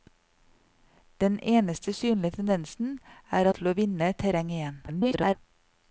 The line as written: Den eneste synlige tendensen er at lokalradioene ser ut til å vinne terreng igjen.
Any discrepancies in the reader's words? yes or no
yes